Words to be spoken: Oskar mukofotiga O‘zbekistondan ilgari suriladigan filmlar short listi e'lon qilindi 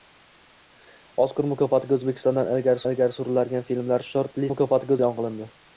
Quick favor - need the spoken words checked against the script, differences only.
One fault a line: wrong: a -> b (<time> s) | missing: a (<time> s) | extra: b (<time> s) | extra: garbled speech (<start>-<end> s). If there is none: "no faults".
extra: ilgari (2.9 s)
wrong: listi -> mukofotiga (4.5 s)